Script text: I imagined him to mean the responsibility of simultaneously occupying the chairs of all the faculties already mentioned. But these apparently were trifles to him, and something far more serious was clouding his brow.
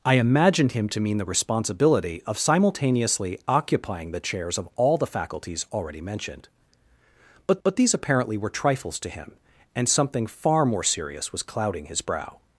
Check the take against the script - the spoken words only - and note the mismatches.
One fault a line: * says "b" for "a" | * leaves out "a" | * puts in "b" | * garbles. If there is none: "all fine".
* puts in "but"